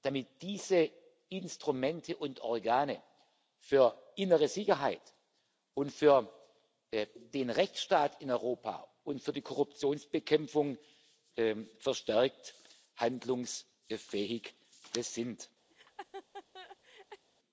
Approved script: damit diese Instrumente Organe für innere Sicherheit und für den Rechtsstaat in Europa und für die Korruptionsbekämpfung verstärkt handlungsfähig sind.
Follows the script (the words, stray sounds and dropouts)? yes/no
no